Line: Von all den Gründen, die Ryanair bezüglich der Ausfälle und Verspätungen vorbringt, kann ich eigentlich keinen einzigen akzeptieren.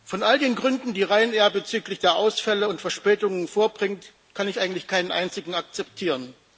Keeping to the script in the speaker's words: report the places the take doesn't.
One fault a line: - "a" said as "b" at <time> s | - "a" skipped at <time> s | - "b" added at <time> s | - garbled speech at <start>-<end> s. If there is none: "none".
none